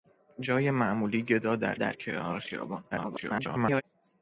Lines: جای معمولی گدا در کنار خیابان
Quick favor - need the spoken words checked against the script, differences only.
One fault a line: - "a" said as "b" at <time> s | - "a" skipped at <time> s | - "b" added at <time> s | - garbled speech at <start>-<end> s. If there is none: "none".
- "در" added at 1.7 s
- garbled speech at 2.9-3.8 s